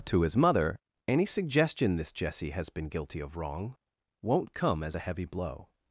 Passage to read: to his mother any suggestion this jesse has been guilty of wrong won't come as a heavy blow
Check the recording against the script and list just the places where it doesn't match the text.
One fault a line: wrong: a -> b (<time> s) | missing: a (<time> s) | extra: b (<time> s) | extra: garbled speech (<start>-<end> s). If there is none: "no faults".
no faults